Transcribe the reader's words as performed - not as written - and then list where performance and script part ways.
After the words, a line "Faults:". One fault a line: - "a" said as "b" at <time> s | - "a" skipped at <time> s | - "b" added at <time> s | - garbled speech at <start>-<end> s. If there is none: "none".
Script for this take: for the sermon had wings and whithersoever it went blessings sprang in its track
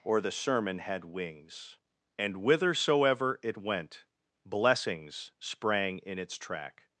or the sermon had wings and whithersoever it went blessings sprang in its track
Faults:
- "for" said as "or" at 0.0 s